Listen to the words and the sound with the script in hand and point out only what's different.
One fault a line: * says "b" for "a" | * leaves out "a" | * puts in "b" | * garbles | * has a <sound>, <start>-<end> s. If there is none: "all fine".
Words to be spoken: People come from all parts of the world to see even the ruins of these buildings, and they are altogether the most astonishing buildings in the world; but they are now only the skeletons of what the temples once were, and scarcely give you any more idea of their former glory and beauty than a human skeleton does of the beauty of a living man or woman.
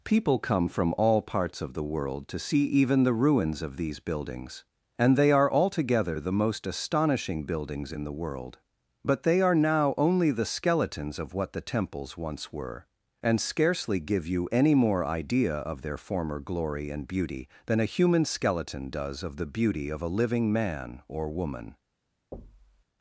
* has a thud, 22.3-22.8 s